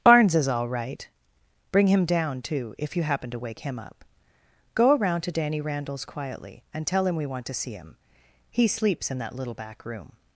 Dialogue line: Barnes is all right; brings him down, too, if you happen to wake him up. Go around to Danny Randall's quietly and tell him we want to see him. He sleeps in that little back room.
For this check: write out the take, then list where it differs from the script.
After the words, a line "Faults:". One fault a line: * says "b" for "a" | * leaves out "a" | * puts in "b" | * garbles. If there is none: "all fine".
Barnes is all right; bring him down, too, if you happen to wake him up. Go around to Danny Randall's quietly and tell him we want to see him. He sleeps in that little back room.
Faults:
* says "bring" for "brings"